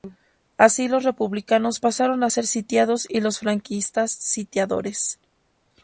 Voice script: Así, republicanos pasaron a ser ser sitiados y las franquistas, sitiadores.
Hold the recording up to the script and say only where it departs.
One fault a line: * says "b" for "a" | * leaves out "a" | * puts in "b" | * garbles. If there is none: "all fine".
* puts in "los"
* leaves out "ser"
* says "los" for "las"